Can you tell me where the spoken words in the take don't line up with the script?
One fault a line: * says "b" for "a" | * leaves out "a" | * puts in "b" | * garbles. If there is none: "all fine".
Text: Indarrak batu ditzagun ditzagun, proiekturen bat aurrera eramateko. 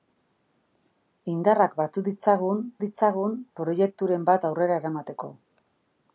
all fine